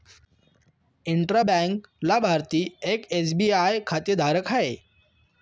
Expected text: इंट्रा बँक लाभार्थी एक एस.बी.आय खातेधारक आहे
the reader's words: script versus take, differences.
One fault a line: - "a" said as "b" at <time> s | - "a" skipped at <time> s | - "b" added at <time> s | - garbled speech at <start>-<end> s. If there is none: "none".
none